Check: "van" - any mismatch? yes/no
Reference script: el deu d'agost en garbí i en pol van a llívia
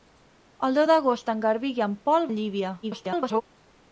yes